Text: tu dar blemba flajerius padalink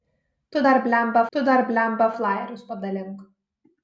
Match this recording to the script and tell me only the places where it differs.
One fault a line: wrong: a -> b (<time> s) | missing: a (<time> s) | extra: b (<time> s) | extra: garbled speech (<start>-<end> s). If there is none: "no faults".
extra: tu dar blemba (1.3 s)